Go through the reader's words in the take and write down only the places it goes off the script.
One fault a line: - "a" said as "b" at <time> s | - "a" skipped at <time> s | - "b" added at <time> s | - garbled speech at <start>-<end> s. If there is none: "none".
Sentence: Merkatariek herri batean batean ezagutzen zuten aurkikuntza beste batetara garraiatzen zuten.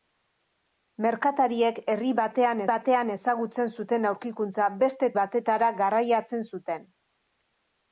none